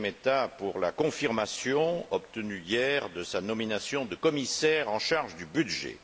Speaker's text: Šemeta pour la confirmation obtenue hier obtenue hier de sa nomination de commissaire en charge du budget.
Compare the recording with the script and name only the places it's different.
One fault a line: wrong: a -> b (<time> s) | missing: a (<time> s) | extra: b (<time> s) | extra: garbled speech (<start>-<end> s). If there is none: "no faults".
missing: obtenue hier (3.1 s)